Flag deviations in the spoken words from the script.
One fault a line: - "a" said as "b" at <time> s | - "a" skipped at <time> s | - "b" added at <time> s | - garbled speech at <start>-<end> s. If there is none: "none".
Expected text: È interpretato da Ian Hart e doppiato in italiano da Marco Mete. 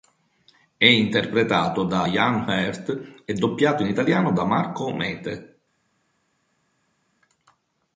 none